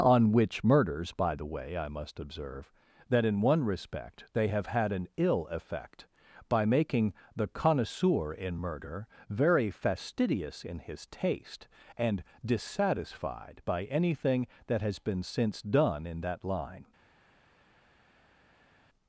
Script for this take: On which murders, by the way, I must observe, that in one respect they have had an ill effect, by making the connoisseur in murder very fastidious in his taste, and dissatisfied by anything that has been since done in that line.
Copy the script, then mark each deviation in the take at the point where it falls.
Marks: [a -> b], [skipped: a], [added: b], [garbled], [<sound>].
On which murders, by the way, I must observe, that in one respect they have had an ill effect, by making the connoisseur in murder very fastidious in his taste, and dissatisfied by anything that has been since done in that line.